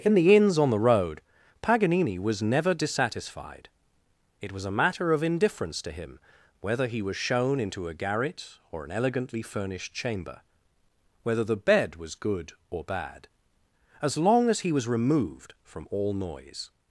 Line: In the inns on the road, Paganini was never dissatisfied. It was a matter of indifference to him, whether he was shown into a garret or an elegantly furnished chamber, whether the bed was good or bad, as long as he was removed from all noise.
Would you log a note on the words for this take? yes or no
no